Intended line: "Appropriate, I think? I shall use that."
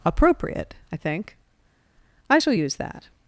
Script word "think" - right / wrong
right